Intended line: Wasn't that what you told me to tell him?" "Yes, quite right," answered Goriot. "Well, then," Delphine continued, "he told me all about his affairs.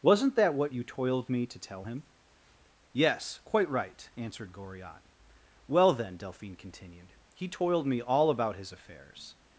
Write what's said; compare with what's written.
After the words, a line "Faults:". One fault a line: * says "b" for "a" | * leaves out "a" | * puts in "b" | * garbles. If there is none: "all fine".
Wasn't that what you toiled me to tell him?" "Yes, quite right," answered Goriot. "Well, then," Delphine continued, "he toiled me all about his affairs.
Faults:
* says "toiled" for "told"
* says "toiled" for "told"